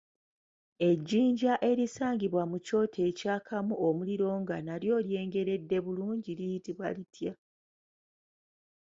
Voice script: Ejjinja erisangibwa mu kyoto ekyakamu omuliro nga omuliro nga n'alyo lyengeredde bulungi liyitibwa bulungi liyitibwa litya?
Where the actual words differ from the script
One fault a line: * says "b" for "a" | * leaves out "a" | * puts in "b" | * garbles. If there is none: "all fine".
* leaves out "omuliro nga"
* leaves out "bulungi liyitibwa"